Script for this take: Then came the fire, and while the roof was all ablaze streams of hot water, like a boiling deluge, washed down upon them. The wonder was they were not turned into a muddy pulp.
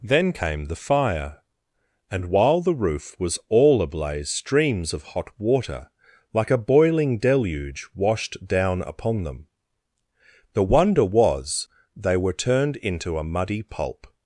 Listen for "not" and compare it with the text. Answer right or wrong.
wrong